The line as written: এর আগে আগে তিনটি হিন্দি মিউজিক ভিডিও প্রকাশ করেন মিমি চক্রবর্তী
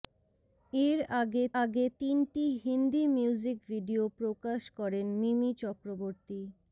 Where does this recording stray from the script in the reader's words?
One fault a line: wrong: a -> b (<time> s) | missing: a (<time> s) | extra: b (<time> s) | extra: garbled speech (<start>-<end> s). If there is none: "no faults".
no faults